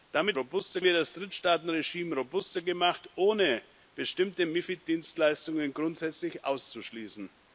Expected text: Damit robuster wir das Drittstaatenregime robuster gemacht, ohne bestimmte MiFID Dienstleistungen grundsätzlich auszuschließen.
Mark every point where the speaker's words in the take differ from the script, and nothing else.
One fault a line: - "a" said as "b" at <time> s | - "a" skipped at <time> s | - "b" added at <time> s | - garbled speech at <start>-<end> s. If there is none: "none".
none